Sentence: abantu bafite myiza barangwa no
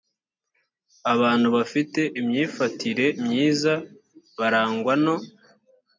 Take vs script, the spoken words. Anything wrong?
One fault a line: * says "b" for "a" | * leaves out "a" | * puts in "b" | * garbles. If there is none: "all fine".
* puts in "imyifatire"